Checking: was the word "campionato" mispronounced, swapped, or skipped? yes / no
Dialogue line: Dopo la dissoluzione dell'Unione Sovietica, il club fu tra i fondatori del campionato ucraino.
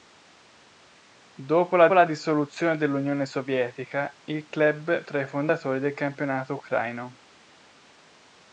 no